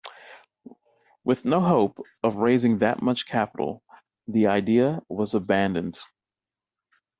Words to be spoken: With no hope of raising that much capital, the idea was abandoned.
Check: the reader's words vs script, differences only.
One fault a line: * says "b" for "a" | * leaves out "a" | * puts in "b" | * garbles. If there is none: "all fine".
all fine